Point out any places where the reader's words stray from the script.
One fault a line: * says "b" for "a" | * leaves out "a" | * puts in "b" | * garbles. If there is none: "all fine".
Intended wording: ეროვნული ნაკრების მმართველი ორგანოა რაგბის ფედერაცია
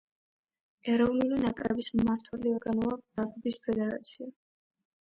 all fine